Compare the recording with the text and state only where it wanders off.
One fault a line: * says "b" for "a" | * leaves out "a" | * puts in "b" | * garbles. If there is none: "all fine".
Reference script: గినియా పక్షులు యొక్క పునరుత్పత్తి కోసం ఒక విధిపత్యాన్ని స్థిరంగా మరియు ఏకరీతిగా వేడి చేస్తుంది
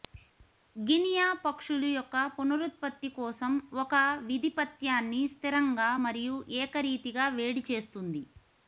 all fine